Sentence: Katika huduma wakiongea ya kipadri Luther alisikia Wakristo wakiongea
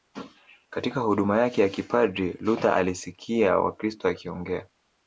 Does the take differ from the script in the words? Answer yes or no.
yes